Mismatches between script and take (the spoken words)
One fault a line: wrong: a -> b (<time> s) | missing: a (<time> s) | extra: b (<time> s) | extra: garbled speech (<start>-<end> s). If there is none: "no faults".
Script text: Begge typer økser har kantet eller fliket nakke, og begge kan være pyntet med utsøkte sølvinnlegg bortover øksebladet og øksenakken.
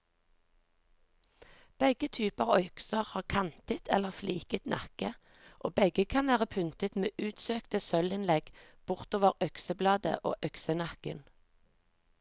no faults